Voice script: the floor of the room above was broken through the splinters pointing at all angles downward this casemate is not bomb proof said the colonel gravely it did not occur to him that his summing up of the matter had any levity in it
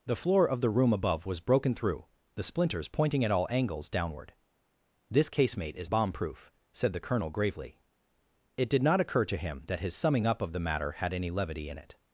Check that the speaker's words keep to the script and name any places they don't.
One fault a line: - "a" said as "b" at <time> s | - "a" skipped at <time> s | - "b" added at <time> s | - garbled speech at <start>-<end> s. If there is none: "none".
- "not" skipped at 5.9 s